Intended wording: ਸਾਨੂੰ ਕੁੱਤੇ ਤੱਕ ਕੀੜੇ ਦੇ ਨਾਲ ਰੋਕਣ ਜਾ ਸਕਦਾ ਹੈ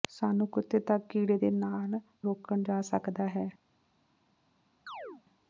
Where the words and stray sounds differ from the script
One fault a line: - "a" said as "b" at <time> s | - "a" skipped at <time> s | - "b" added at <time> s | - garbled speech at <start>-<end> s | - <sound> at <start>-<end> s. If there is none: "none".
- chirp at 4.9-5.2 s